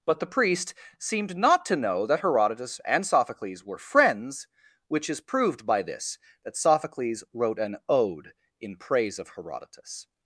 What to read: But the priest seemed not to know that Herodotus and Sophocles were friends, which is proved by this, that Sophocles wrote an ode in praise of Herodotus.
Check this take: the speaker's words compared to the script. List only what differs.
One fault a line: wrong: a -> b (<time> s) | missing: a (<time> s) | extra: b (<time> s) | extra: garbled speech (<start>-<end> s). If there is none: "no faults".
no faults